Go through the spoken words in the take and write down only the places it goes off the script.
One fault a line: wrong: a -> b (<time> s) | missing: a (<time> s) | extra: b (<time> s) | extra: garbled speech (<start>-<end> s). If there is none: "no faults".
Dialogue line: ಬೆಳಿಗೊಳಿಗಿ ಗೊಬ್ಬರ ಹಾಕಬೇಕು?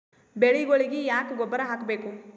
extra: ಯಾಕ (1.1 s)